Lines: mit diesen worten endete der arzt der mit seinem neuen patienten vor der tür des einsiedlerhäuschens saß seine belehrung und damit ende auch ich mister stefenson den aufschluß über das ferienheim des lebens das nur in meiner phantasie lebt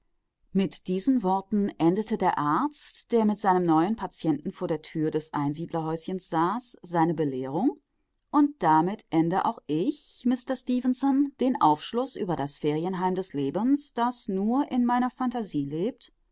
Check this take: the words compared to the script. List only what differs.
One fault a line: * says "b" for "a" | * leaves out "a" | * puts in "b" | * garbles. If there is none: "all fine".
all fine